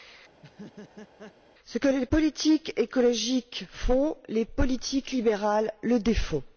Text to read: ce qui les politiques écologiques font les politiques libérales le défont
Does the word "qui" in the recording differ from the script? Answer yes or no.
yes